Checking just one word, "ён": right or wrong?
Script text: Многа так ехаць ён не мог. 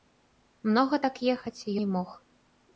wrong